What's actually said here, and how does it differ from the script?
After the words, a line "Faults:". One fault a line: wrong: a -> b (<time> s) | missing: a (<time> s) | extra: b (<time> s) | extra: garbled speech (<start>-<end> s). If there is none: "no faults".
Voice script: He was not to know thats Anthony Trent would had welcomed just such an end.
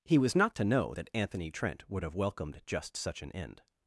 He was not to know that Anthony Trent would have welcomed just such an end.
Faults:
wrong: thats -> that (0.9 s)
wrong: had -> have (2.0 s)